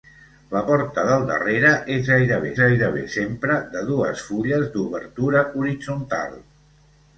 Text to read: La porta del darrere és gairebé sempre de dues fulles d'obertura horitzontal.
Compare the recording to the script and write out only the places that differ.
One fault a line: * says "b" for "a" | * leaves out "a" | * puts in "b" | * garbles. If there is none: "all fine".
* puts in "gairebé"